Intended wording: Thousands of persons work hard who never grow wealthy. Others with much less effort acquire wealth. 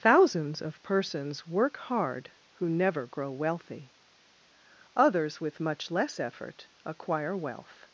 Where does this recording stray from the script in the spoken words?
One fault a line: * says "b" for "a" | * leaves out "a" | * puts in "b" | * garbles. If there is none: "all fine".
all fine